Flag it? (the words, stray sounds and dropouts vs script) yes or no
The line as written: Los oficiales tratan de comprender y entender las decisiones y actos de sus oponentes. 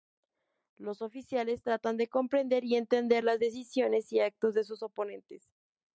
no